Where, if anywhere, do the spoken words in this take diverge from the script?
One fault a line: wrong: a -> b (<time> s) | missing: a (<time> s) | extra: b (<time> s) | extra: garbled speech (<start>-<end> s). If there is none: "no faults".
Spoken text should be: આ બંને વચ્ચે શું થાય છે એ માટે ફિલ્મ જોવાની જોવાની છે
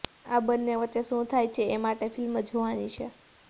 missing: જોવાની (2.9 s)